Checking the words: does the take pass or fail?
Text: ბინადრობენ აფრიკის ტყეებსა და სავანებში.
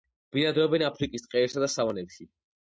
pass